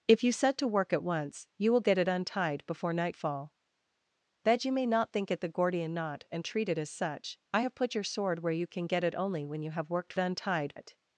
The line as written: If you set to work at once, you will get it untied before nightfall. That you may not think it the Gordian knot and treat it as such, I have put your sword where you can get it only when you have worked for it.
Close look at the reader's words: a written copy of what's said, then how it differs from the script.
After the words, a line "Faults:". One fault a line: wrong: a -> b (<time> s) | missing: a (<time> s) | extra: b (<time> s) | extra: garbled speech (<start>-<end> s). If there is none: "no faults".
If you set to work at once, you will get it untied before nightfall. That you may not think it the Gordian knot and treat it as such, I have put your sword where you can get it only when you have worked untied it.
Faults:
wrong: for -> untied (10.2 s)